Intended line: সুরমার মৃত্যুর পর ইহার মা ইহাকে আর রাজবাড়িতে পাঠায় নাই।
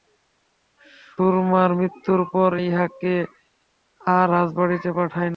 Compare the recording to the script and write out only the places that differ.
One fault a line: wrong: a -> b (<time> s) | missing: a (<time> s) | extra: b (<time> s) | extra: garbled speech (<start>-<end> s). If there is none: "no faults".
missing: ইহার মা (2.5 s)